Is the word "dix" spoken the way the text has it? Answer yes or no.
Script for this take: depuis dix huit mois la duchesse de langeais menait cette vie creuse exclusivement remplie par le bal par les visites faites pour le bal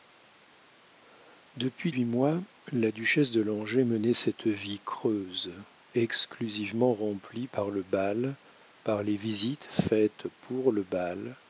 no